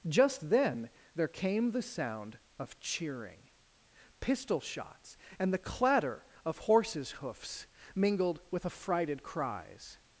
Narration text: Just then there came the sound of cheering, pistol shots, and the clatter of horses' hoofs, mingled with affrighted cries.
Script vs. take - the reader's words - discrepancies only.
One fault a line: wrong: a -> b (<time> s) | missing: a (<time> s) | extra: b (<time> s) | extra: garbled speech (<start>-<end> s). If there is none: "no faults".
no faults